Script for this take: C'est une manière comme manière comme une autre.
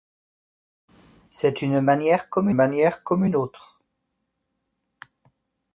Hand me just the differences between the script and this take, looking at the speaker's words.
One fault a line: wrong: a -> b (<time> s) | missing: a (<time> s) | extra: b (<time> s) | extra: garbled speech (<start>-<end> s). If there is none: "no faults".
no faults